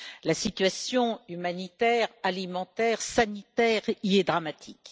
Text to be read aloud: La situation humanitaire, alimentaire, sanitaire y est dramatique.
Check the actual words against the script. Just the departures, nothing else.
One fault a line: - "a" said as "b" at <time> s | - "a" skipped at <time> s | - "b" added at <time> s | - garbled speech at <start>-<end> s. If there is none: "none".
none